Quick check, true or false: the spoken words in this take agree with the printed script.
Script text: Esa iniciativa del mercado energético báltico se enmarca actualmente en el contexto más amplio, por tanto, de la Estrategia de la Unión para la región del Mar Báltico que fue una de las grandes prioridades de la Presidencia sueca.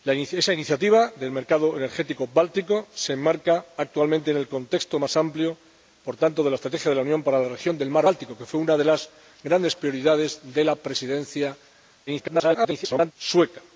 false